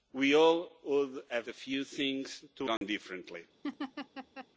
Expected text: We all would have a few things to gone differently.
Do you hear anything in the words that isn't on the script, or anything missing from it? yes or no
no